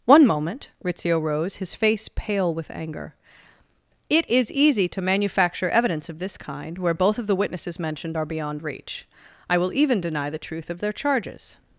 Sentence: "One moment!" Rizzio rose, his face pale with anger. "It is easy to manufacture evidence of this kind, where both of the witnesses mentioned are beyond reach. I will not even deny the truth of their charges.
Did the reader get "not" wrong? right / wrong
wrong